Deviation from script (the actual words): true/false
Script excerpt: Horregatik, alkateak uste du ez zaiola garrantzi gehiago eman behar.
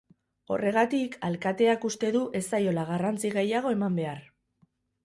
false